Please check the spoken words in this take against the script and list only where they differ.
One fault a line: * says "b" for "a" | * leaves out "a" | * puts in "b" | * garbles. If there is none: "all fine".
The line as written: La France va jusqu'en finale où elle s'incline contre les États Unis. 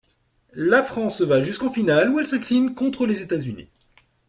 all fine